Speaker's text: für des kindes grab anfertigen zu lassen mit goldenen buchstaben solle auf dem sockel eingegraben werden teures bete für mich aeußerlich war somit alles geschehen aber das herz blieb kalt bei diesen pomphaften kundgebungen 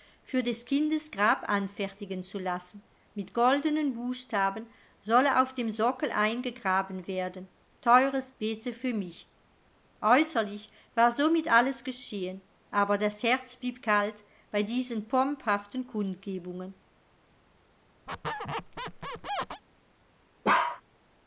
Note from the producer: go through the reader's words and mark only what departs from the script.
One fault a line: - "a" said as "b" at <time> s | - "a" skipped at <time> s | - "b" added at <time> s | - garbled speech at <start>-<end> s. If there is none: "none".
none